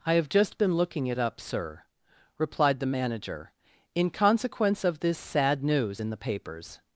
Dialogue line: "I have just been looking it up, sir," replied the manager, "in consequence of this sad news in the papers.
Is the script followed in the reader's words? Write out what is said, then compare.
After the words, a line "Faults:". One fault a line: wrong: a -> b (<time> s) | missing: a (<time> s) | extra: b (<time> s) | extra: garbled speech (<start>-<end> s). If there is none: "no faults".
"I have just been looking it up, sir," replied the manager, "in consequence of this sad news in the papers.
Faults:
no faults